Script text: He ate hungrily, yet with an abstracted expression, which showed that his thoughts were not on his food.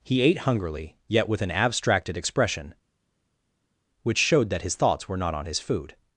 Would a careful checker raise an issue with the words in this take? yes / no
no